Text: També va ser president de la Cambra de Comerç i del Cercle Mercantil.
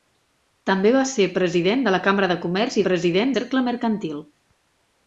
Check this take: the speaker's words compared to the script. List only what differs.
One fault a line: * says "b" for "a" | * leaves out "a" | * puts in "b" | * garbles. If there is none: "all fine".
* says "president" for "del"